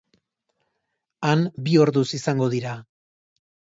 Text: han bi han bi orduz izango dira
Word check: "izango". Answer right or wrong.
right